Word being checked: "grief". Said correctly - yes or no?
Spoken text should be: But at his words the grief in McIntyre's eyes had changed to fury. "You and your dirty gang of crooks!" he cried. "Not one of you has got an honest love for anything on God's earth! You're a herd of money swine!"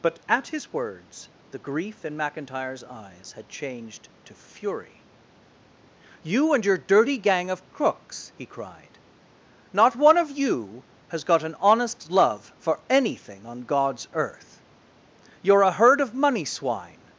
yes